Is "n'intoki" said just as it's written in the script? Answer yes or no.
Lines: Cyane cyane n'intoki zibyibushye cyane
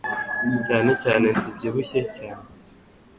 no